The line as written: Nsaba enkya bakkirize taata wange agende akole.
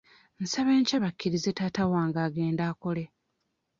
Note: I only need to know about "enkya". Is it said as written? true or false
true